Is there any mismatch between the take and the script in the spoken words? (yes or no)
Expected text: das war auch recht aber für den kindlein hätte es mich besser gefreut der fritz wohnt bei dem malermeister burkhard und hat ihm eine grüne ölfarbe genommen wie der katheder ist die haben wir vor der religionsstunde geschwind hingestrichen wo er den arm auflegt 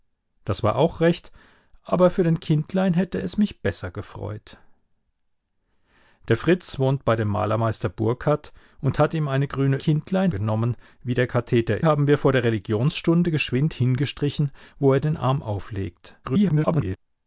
yes